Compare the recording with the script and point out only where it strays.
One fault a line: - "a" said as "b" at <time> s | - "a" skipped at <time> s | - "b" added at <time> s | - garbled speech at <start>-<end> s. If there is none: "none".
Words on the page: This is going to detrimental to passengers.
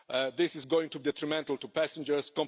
none